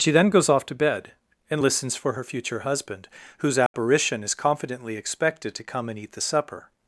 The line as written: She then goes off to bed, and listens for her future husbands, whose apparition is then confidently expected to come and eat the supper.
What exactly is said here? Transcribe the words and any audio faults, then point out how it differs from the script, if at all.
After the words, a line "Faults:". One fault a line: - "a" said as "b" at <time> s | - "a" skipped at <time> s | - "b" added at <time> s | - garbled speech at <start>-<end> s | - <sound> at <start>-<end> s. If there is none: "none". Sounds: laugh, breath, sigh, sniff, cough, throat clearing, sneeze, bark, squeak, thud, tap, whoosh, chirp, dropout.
She then goes off to bed, and listens for her future husband, whose apparition is confidently expected to come and eat the supper.
Faults:
- "husbands" said as "husband" at 2.6 s
- dropout at 3.7-3.7 s
- "then" skipped at 4.3 s